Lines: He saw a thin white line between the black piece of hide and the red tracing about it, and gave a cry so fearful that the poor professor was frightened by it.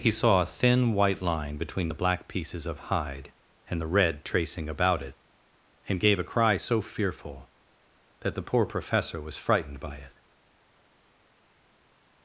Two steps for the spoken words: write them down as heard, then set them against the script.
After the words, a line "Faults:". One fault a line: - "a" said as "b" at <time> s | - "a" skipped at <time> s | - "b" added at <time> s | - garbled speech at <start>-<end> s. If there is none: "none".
He saw a thin white line between the black pieces of hide and the red tracing about it, and gave a cry so fearful that the poor professor was frightened by it.
Faults:
- "piece" said as "pieces" at 2.3 s